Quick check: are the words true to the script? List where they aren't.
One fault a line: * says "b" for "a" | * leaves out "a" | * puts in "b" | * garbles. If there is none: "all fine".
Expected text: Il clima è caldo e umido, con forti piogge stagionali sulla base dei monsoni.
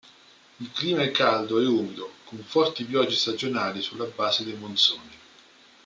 all fine